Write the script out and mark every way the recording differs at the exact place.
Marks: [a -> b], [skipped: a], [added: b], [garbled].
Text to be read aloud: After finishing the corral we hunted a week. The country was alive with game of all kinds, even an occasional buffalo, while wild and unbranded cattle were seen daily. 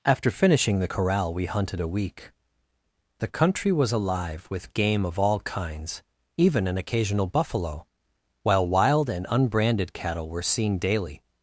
After finishing the corral we hunted a week. The country was alive with game of all kinds, even an occasional buffalo, while wild and unbranded cattle were seen daily.